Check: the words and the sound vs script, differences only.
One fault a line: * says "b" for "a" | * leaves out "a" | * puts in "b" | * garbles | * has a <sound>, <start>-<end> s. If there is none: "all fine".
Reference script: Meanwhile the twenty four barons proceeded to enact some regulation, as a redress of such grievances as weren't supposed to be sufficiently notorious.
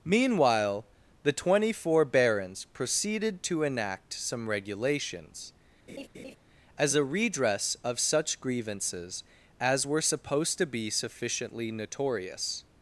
* says "regulations" for "regulation"
* has a laugh, 5.9-6.4 s
* says "were" for "weren't"